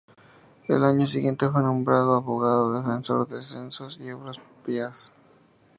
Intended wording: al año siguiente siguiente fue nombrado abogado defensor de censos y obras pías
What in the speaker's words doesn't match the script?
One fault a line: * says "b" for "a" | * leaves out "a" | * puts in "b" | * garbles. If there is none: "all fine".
* leaves out "siguiente"